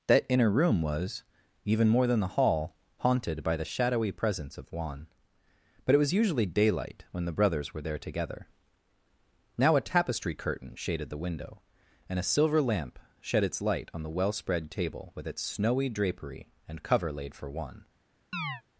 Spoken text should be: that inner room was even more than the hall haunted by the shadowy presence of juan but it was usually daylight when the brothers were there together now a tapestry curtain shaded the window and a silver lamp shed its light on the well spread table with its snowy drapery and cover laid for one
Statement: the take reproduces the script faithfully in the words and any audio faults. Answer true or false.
false